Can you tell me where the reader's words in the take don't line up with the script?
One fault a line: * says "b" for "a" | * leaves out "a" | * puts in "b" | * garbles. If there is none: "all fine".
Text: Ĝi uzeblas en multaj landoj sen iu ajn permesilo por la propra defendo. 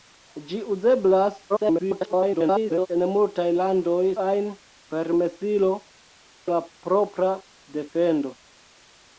* garbles
* leaves out "sen iu"
* leaves out "por"